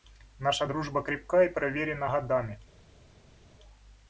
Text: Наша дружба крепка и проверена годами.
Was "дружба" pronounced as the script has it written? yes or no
yes